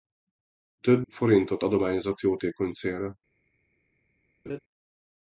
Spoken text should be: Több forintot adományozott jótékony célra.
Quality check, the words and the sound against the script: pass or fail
fail